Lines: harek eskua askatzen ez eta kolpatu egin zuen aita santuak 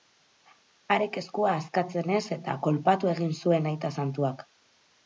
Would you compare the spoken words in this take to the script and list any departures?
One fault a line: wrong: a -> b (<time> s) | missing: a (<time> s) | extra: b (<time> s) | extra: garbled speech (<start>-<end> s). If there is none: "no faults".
no faults